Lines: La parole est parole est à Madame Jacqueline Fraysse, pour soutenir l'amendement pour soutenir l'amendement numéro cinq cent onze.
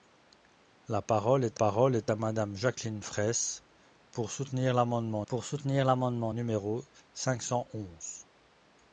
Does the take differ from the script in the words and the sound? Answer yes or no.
no